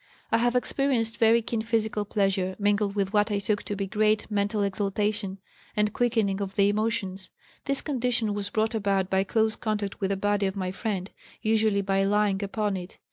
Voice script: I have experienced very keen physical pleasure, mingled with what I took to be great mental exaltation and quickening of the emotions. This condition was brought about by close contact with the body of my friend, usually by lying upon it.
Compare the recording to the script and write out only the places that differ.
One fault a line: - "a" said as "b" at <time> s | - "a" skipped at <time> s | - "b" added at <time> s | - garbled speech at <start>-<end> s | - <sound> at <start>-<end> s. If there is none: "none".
none